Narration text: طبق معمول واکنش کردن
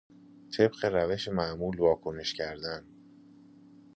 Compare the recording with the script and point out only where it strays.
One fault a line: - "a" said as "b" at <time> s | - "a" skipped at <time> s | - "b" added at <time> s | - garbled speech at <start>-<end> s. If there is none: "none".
- "روش" added at 0.8 s